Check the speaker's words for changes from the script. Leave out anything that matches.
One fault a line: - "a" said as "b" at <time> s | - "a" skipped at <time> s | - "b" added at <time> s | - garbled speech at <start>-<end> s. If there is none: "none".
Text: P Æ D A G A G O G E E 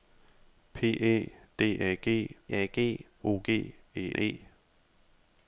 none